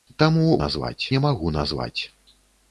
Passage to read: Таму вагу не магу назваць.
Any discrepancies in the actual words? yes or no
yes